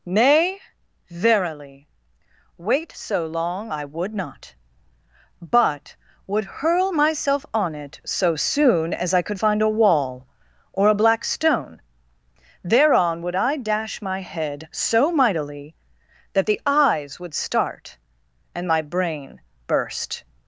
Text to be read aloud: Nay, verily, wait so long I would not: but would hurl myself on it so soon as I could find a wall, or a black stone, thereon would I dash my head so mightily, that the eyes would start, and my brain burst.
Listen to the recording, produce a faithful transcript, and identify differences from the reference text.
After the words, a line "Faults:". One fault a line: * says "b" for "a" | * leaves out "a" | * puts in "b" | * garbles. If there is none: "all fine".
Nay, verily, wait so long I would not: but would hurl myself on it so soon as I could find a wall, or a black stone, thereon would I dash my head so mightily, that the eyes would start, and my brain burst.
Faults:
all fine